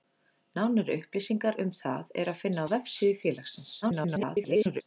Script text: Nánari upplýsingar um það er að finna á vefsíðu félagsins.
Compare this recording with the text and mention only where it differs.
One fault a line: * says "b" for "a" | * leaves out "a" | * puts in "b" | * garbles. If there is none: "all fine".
* garbles